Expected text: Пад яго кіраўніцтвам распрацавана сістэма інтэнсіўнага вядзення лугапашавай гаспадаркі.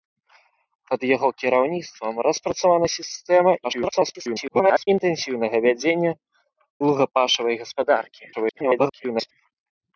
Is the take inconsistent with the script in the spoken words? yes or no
yes